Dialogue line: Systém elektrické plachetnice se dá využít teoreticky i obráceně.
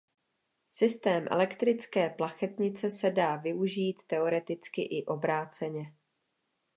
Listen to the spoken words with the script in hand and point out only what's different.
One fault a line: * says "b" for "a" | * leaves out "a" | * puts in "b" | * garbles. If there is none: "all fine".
all fine